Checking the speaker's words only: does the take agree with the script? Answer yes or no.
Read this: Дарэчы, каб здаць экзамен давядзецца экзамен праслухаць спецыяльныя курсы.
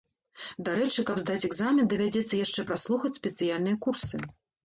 no